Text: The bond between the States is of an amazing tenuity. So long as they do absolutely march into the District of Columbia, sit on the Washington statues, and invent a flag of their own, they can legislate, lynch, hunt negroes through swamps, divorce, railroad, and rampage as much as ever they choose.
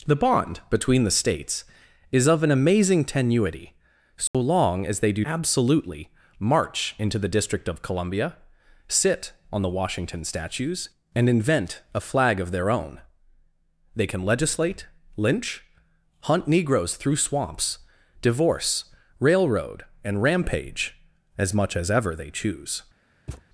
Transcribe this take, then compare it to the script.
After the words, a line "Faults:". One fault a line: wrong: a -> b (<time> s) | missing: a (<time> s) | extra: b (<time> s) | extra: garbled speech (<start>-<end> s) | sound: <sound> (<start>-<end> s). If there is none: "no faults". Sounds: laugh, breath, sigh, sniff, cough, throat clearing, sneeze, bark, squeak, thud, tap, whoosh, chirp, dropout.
The bond between the States is of an amazing tenuity. So long as they do absolutely march into the District of Columbia, sit on the Washington statues, and invent a flag of their own, they can legislate, lynch, hunt negroes through swamps, divorce, railroad, and rampage as much as ever they choose.
Faults:
sound: dropout (4.3-4.3 s)
sound: thud (23.3-23.5 s)